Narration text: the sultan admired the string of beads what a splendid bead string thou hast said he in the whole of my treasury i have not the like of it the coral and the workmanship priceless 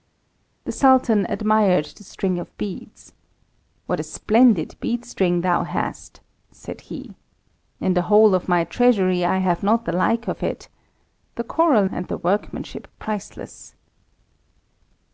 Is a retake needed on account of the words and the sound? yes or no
no